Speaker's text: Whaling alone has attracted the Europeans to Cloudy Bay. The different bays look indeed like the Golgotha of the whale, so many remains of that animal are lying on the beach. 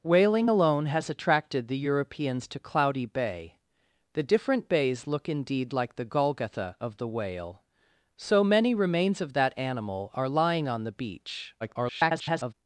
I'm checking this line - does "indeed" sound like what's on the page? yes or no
yes